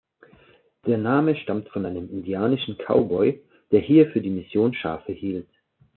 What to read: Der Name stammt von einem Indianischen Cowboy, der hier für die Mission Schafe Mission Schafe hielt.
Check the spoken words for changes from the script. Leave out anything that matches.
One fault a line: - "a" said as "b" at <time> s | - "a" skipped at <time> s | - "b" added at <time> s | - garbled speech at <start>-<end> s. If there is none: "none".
- "Mission Schafe" skipped at 5.1 s